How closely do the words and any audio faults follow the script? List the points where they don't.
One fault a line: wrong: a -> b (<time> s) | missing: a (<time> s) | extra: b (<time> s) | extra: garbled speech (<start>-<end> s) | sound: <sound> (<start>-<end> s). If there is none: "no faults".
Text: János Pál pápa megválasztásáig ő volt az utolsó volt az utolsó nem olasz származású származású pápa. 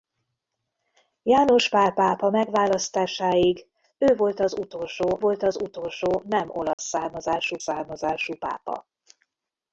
sound: dropout (6.7-6.8 s)